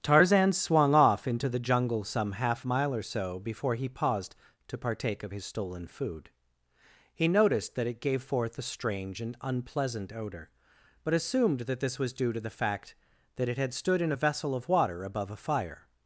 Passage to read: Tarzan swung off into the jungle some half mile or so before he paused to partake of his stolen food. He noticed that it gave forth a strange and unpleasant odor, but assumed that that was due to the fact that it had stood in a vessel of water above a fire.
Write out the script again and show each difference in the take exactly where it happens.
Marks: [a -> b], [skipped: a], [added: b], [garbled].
Tarzan swung off into the jungle some half mile or so before he paused to partake of his stolen food. He noticed that it gave forth a strange and unpleasant odor, but assumed that [that -> this] was due to the fact that it had stood in a vessel of water above a fire.